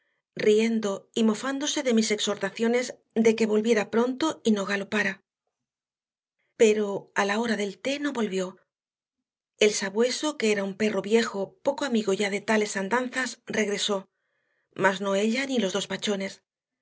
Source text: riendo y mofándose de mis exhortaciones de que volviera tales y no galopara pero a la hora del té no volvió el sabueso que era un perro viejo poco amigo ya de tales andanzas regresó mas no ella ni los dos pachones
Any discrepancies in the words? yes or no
yes